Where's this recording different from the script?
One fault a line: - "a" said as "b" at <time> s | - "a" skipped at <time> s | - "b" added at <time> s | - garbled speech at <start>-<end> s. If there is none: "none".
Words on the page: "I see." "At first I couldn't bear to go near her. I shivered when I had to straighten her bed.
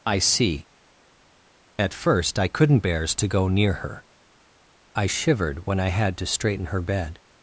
- "bear" said as "bears" at 2.8 s